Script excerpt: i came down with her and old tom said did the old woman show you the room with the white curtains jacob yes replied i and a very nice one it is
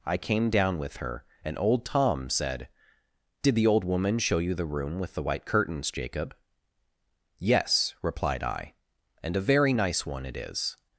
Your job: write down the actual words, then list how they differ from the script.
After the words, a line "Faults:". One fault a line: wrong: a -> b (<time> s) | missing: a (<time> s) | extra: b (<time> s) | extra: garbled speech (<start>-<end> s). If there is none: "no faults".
i came down with her and old tom said did the old woman show you the room with the white curtains jacob yes replied i and a very nice one it is
Faults:
no faults